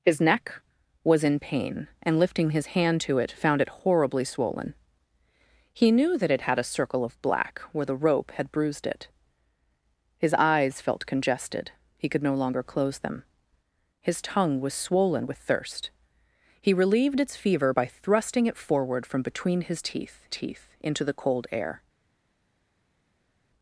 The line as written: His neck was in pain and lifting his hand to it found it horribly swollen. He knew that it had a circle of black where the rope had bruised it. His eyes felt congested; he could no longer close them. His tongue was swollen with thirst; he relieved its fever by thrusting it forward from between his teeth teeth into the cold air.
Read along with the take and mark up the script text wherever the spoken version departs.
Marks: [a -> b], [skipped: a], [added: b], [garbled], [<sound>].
His neck was in pain and lifting his hand to it found it horribly swollen. He knew that it had a circle of black where the rope had bruised it. His eyes felt congested; he could no longer close them. His tongue was swollen with thirst; he relieved its fever by thrusting it forward from between his teeth teeth into the cold air.